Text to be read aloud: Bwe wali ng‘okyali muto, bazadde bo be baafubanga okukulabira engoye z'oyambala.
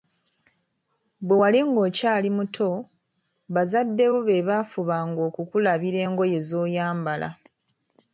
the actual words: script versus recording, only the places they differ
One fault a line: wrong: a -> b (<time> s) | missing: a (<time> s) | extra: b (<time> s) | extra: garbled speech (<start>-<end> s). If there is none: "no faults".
no faults